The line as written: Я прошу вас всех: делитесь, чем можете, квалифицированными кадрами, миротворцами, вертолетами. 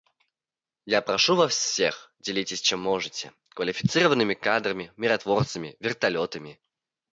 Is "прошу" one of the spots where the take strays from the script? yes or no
no